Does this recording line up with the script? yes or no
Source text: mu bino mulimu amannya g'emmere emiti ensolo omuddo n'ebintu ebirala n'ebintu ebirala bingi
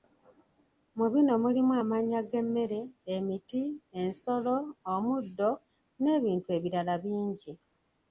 no